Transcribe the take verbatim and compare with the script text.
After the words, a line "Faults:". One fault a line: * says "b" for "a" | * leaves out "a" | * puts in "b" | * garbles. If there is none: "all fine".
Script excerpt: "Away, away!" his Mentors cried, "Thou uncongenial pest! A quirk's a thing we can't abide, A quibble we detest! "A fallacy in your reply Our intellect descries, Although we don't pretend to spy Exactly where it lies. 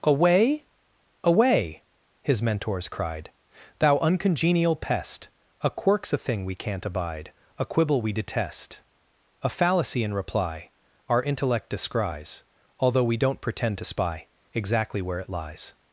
"Away, away!" his Mentors cried, "Thou uncongenial pest! A quirk's a thing we can't abide, A quibble we detest! "A fallacy in reply Our intellect descries, Although we don't pretend to spy Exactly where it lies.
Faults:
* leaves out "your"